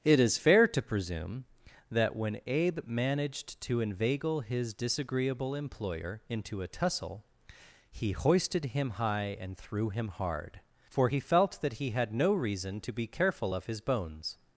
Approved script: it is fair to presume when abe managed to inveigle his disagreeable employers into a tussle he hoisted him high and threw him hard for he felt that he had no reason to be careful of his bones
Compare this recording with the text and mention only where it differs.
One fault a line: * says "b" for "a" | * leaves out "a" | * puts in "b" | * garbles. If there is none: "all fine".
* puts in "that"
* says "employer" for "employers"